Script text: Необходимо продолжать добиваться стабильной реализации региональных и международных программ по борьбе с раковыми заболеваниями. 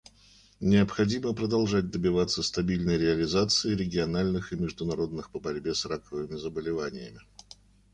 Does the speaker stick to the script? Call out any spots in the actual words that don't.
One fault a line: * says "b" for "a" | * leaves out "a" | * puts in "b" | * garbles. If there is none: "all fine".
* leaves out "программ"